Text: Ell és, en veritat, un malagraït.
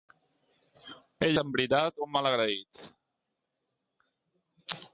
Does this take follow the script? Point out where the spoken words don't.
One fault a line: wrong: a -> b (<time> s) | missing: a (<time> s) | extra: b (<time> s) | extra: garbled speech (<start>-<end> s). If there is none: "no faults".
missing: és (1.4 s)